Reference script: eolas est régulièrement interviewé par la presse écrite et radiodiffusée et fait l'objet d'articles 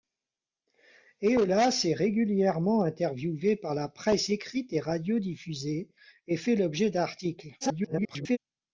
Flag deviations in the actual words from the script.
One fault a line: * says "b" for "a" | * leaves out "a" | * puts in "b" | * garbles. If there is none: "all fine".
* garbles